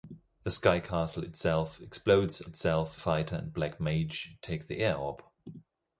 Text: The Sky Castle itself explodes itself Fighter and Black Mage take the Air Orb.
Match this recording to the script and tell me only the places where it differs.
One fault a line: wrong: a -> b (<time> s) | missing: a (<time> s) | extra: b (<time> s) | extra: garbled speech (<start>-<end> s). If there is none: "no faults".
no faults